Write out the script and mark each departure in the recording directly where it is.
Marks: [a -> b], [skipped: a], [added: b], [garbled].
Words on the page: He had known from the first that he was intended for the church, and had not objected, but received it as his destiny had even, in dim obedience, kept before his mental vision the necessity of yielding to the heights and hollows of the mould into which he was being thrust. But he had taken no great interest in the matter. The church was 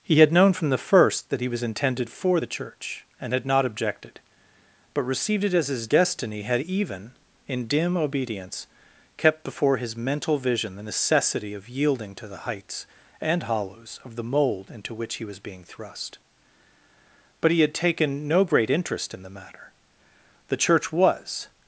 He had known from the first that he was intended for the church, and had not objected, but received it as his destiny had even, in dim obedience, kept before his mental vision the necessity of yielding to the heights and hollows of the mould into which he was being thrust. But he had taken no great interest in the matter. The church was